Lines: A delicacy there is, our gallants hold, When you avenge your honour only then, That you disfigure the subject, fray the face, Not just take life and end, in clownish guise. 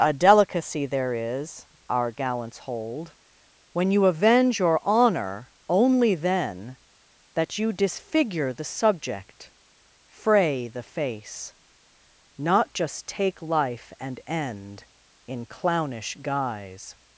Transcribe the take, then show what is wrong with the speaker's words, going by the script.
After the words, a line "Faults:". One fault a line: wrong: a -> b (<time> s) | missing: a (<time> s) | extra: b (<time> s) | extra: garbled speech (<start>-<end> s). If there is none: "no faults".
A delicacy there is, our gallants hold, When you avenge your honour only then, That you disfigure the subject, fray the face, Not just take life and end, in clownish guise.
Faults:
no faults